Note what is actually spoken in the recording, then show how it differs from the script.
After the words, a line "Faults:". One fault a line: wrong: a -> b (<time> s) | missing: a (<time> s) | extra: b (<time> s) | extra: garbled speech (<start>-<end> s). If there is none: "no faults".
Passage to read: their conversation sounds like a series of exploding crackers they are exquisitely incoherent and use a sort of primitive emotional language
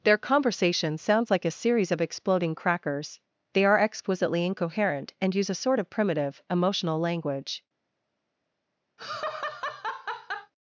their conversation sounds like a series of exploding crackers they are exquisitely incoherent and use a sort of primitive emotional language
Faults:
no faults